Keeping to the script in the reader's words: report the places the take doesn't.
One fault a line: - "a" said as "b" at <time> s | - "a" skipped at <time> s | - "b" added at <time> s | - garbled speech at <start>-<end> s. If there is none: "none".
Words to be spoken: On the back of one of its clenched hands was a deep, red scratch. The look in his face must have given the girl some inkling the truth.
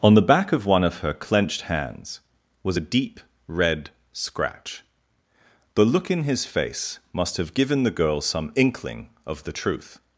- "its" said as "her" at 1.0 s
- "of" added at 9.3 s